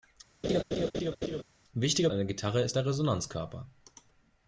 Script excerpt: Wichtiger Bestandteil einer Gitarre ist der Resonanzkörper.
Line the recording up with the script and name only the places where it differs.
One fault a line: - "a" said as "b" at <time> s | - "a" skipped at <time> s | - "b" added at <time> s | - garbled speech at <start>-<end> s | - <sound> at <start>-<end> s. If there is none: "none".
- laugh at 0.4-1.4 s
- "Bestandteil" skipped at 2.1 s